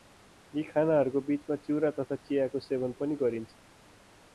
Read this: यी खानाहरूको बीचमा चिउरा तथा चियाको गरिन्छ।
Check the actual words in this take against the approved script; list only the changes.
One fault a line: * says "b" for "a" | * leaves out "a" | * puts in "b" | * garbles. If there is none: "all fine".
* puts in "सेवन पनि"